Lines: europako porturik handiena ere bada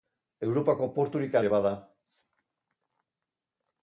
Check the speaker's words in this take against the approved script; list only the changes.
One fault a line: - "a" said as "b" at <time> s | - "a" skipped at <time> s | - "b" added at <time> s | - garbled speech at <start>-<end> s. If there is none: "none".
- "handiena" skipped at 1.4 s